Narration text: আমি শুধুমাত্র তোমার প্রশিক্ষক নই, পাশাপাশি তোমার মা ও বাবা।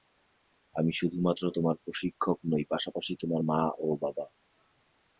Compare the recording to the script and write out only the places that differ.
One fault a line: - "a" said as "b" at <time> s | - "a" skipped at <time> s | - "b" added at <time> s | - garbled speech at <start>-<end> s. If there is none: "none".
none